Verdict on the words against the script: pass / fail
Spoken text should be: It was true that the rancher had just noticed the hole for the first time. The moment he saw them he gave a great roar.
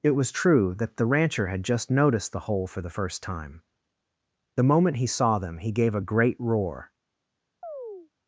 pass